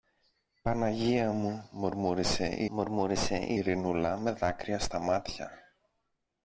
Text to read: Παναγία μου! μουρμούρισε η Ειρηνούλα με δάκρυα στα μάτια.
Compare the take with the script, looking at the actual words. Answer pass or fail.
fail